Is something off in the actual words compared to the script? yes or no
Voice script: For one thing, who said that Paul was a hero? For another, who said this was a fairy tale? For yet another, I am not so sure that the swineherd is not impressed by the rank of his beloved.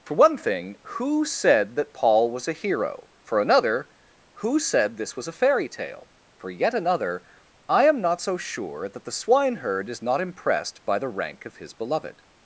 no